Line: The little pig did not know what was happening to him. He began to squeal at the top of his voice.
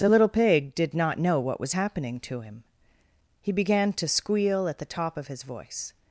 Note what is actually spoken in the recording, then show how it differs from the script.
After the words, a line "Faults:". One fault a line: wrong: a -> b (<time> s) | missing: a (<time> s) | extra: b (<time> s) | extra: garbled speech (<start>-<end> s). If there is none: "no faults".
The little pig did not know what was happening to him. He began to squeal at the top of his voice.
Faults:
no faults